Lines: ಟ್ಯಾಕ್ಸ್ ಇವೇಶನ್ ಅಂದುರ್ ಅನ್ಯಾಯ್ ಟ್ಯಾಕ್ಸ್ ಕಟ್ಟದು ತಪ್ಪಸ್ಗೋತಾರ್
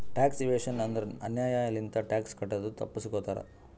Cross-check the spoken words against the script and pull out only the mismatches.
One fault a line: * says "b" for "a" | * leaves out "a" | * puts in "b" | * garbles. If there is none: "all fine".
* puts in "ಲಿಂತ"